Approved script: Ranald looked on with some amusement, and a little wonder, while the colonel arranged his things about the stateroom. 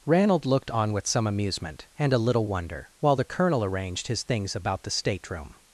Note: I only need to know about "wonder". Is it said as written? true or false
true